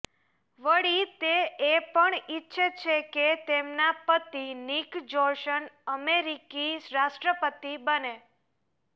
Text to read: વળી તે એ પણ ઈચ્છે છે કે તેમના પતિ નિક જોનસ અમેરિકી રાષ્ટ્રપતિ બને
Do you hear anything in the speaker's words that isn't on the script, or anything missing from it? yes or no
no